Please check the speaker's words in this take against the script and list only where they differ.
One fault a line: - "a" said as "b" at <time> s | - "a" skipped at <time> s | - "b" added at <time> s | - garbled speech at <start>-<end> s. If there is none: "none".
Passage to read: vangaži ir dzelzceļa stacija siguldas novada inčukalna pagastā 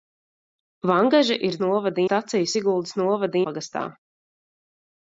- "dzelzceļa" said as "novada" at 1.7 s
- "inčukalna" skipped at 3.4 s